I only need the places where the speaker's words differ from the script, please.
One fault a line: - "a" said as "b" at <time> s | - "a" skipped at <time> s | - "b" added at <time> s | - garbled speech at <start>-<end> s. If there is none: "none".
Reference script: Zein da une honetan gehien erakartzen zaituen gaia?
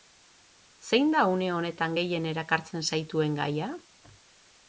none